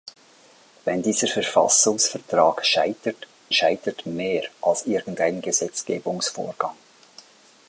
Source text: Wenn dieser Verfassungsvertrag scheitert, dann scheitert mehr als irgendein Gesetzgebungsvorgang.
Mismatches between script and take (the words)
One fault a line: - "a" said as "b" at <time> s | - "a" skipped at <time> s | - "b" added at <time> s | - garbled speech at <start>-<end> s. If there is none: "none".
- "dann" skipped at 3.3 s